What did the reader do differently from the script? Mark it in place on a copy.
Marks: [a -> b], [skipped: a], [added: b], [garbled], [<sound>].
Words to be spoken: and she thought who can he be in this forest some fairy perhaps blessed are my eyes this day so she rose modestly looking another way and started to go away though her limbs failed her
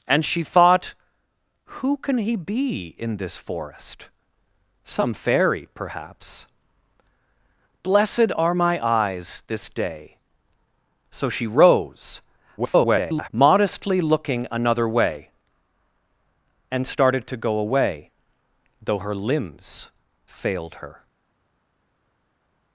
and she thought who can he be in this forest some fairy perhaps blessed are my eyes this day so she rose [garbled] modestly looking another way and started to go away though her limbs failed her